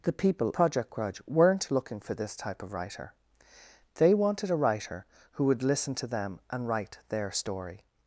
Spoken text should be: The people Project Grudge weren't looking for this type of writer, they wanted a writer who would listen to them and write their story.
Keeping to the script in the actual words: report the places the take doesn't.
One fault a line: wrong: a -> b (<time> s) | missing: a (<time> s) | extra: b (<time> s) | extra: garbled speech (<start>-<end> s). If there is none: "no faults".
no faults